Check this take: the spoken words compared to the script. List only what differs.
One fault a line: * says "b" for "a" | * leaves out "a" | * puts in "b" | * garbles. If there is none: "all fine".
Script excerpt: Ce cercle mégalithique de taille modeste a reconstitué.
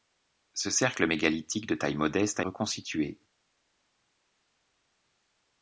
all fine